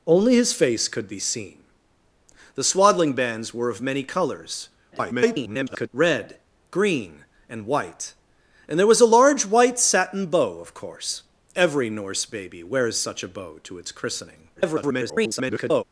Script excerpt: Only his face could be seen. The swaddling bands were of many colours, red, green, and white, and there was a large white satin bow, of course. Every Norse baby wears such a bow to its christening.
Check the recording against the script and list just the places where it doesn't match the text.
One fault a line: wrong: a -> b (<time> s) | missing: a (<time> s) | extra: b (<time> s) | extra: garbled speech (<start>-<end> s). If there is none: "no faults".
extra: garbled speech (4.9-5.9 s)
extra: garbled speech (14.6-15.8 s)